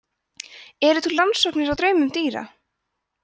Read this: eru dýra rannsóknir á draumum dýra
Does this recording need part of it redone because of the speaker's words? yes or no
yes